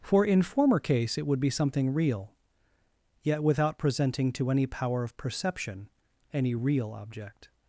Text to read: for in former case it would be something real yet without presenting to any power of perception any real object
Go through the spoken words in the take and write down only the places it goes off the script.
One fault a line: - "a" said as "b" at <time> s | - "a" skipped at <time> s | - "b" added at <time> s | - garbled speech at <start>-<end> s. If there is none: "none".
none